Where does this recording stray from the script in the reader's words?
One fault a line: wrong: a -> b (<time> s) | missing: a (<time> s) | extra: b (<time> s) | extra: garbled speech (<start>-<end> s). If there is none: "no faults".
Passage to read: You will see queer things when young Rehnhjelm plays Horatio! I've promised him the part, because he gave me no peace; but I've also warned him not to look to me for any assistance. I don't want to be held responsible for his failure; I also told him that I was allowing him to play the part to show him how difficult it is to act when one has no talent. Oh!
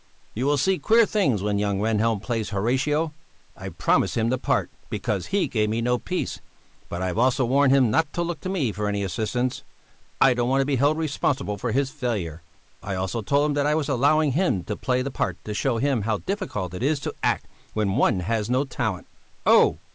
no faults